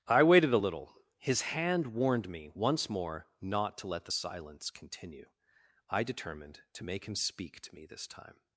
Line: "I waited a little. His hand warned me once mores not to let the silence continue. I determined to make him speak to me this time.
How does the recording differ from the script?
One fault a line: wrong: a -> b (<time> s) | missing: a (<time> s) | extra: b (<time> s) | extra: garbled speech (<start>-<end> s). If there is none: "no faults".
wrong: mores -> more (2.9 s)